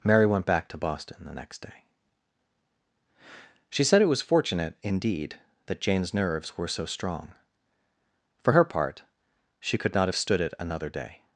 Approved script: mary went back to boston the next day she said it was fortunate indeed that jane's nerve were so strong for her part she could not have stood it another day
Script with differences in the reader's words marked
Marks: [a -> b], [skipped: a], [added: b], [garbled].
mary went back to boston the next day she said it was fortunate indeed that jane's [nerve -> nerves] were so strong for her part she could not have stood it another day